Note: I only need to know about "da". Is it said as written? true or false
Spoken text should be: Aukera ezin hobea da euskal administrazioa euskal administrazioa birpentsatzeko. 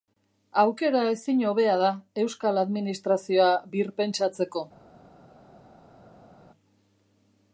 true